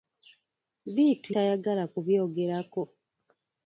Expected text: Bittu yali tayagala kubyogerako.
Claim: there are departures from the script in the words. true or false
true